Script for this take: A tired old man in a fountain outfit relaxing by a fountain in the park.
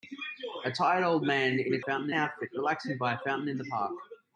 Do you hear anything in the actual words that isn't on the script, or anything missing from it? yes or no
no